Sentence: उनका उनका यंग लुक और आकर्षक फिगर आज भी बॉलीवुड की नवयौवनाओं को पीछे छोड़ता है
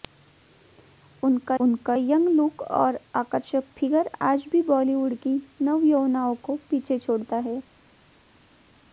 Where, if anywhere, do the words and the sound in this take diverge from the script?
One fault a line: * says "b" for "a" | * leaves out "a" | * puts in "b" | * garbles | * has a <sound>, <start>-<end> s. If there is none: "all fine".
all fine